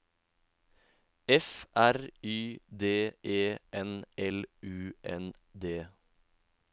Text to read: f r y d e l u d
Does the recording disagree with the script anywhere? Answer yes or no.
yes